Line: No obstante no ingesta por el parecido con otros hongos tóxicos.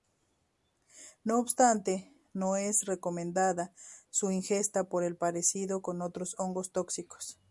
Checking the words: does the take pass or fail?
fail